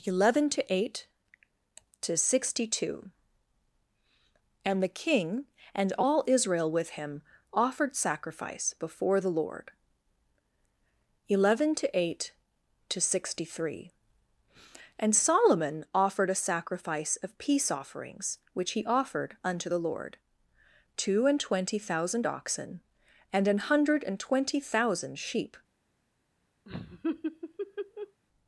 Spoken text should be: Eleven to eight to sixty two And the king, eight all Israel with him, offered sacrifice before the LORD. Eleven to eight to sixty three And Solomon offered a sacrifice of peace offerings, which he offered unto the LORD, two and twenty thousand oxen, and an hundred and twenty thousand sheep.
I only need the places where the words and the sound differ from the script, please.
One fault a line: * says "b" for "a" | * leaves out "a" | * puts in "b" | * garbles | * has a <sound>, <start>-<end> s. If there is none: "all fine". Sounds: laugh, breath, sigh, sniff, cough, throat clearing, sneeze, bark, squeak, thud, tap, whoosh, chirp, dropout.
* says "and" for "eight"
* has a laugh, 26.7-28.2 s